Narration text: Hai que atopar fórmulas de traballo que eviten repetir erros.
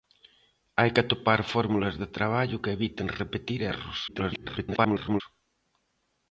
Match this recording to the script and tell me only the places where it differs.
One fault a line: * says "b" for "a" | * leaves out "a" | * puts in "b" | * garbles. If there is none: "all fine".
* garbles